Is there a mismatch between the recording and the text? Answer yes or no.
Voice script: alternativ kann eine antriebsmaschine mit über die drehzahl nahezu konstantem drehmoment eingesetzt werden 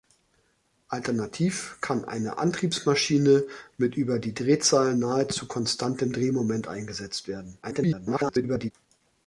yes